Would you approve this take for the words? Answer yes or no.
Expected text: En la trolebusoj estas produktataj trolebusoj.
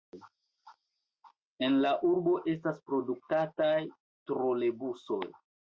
no